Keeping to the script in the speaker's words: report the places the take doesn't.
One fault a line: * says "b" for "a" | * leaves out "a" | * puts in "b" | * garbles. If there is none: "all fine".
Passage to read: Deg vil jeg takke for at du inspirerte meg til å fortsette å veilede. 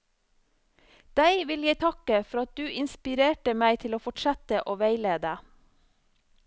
all fine